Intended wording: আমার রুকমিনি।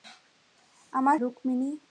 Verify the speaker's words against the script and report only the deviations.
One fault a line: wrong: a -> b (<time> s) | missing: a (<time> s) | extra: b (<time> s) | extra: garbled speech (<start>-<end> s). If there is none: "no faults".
no faults